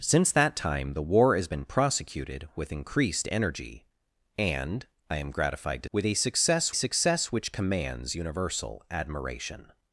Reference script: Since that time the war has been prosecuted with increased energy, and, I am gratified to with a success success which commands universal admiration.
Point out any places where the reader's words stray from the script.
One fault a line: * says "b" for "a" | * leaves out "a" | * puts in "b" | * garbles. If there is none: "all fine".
all fine